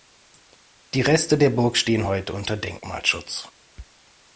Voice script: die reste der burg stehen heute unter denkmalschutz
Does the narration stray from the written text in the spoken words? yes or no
no